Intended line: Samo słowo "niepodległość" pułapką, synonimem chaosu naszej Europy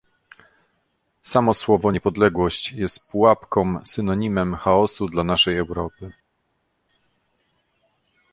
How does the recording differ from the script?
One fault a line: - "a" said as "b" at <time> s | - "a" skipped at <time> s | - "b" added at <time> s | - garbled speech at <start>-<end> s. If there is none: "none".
- "jest" added at 2.7 s
- "dla" added at 5.1 s